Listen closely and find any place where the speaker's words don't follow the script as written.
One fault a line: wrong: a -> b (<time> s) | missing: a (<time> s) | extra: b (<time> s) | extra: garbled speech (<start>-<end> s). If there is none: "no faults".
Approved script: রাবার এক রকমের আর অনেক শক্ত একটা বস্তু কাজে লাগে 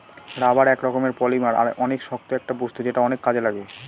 extra: পলিমার (1.2 s)
extra: যেটা অনেক (2.9 s)